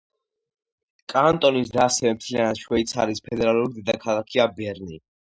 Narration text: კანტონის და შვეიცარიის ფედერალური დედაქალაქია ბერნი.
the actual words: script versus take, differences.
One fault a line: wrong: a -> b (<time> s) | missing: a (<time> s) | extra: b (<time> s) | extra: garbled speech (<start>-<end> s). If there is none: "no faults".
extra: ასევე მთლიანად (1.8 s)